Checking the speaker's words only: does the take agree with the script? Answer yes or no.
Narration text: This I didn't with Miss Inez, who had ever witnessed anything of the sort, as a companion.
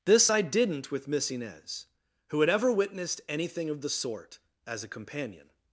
yes